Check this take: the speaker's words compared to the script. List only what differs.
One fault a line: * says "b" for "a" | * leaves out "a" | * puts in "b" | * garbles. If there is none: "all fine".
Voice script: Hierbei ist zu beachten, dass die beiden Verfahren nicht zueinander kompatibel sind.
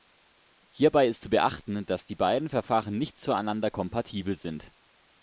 all fine